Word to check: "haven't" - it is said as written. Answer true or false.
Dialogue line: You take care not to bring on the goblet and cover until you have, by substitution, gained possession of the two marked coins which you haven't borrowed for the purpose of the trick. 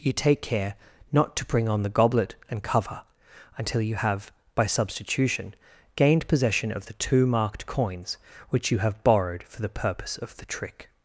false